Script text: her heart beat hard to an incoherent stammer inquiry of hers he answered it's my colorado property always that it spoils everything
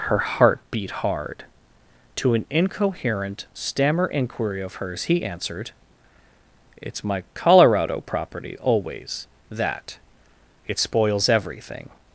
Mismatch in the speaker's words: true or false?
false